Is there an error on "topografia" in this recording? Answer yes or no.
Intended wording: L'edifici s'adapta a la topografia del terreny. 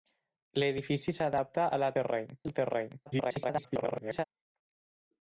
yes